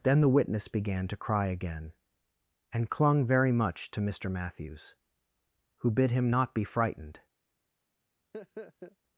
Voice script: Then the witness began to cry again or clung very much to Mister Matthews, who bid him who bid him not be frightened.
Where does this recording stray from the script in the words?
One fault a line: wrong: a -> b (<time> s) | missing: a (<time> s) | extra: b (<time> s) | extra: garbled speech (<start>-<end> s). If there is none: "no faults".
wrong: or -> and (2.7 s)
missing: who bid him (6.3 s)